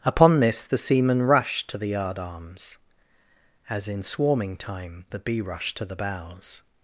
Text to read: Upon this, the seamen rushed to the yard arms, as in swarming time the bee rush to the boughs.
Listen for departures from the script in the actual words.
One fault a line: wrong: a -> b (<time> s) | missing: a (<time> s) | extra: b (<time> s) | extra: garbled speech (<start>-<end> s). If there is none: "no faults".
no faults